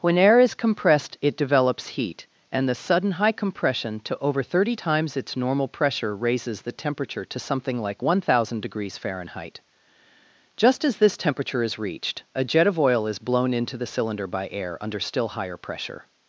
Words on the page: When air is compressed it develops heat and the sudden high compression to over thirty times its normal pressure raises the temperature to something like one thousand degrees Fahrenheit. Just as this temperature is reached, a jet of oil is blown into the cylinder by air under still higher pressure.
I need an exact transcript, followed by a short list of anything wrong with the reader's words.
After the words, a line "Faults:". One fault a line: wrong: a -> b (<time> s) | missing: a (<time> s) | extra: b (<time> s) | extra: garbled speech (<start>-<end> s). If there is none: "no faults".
When air is compressed it develops heat and the sudden high compression to over thirty times its normal pressure raises the temperature to something like one thousand degrees Fahrenheit. Just as this temperature is reached, a jet of oil is blown into the cylinder by air under still higher pressure.
Faults:
no faults